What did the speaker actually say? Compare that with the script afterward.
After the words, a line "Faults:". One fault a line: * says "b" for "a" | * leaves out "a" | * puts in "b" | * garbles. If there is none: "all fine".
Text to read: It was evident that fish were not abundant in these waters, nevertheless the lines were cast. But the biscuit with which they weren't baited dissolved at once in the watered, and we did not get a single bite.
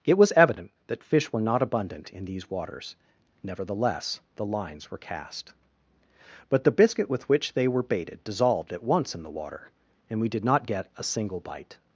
It was evident that fish were not abundant in these waters, nevertheless the lines were cast. But the biscuit with which they were baited dissolved at once in the water, and we did not get a single bite.
Faults:
* says "were" for "weren't"
* says "water" for "watered"